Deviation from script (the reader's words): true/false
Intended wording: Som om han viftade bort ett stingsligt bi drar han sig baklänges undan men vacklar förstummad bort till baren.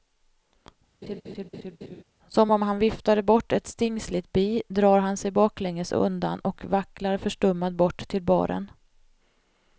true